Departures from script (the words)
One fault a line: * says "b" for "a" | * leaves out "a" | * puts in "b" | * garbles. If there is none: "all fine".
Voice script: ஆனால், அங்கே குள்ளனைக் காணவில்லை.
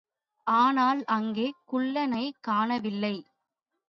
all fine